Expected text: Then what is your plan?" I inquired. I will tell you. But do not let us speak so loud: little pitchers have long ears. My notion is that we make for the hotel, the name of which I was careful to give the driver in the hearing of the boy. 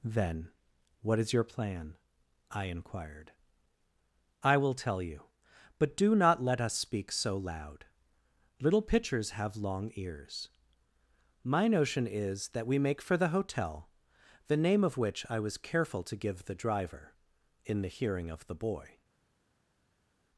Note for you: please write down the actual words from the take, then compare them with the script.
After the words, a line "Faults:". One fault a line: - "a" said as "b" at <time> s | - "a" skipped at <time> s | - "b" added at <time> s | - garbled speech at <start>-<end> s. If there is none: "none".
Then what is your plan?" I inquired. I will tell you. But do not let us speak so loud: little pitchers have long ears. My notion is that we make for the hotel, the name of which I was careful to give the driver in the hearing of the boy.
Faults:
none